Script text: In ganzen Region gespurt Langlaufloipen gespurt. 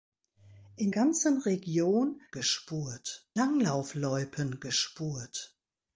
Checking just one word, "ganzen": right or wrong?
right